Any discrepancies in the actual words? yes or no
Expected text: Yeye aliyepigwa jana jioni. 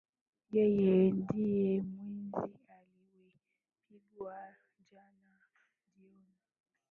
yes